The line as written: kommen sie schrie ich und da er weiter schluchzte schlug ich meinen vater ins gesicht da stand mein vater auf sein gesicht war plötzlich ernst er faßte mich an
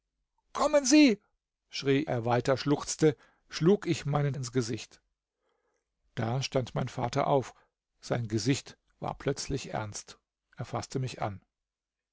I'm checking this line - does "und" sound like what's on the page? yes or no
no